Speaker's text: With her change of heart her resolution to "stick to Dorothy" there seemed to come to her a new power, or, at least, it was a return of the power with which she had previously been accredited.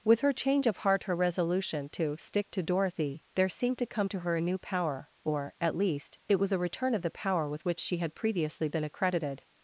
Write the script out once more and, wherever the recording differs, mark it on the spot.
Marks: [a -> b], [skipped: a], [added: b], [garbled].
With her change of heart her resolution to "stick to Dorothy" there seemed to come to her a new power, or, at least, it was a return of the power with which she had previously been accredited.